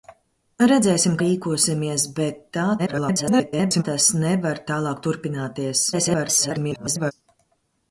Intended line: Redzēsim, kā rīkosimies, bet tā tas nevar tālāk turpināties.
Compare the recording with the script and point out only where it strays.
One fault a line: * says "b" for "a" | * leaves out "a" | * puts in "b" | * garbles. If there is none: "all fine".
* leaves out "kā"
* garbles
* garbles